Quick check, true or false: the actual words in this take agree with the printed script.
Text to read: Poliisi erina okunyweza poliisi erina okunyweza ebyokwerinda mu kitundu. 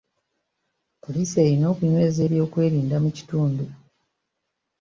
false